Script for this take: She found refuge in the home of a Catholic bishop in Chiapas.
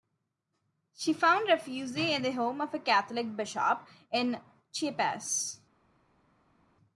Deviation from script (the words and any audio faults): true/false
false